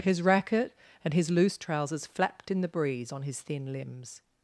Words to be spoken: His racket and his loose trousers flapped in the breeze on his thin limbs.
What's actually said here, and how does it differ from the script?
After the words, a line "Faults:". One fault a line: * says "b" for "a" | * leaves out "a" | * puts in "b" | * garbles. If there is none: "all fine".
His racket and his loose trousers flapped in the breeze on his thin limbs.
Faults:
all fine